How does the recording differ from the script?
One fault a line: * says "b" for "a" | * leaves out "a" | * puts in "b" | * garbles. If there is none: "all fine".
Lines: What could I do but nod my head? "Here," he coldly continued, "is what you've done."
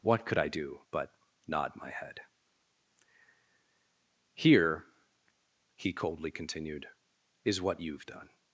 all fine